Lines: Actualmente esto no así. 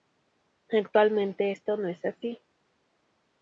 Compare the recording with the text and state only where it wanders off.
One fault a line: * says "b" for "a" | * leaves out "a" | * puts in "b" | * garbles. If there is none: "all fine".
* puts in "es"